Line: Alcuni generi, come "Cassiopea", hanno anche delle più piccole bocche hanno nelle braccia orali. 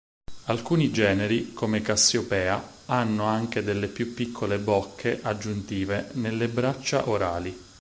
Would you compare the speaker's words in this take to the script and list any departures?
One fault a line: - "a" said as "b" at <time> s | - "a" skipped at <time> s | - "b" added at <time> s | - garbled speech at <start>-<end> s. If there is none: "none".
- "hanno" said as "aggiuntive" at 5.2 s